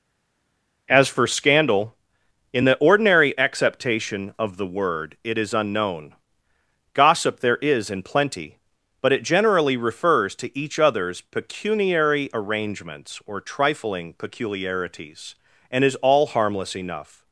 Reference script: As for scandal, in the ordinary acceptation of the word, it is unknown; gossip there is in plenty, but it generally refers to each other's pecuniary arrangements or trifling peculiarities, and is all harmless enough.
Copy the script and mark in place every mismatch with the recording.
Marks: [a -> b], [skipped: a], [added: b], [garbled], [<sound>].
As for scandal, in the ordinary acceptation of the word, it is unknown; gossip there is in plenty, but it generally refers to each other's pecuniary arrangements or trifling peculiarities, and is all harmless enough.